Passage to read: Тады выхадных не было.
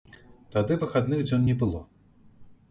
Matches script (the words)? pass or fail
fail